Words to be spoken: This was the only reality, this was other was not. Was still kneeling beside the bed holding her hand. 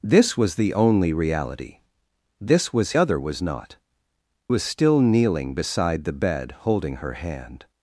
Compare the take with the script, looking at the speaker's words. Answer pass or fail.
pass